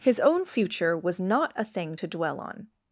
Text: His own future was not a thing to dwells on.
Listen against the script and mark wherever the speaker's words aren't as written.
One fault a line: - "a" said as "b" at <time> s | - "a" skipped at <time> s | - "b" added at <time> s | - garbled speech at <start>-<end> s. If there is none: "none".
- "dwells" said as "dwell" at 2.1 s